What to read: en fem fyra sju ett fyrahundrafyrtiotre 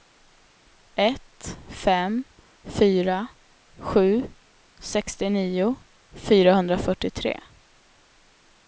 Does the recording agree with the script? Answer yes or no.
no